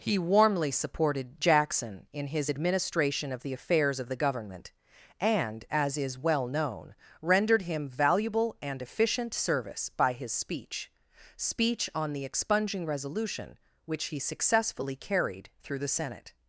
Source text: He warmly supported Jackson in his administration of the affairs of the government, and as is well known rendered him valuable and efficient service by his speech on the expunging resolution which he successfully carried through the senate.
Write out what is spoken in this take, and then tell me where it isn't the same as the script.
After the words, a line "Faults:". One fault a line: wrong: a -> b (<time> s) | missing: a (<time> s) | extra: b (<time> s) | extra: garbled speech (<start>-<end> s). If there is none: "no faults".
He warmly supported Jackson in his administration of the affairs of the government, and as is well known rendered him valuable and efficient service by his speech speech on the expunging resolution which he successfully carried through the senate.
Faults:
extra: speech (11.4 s)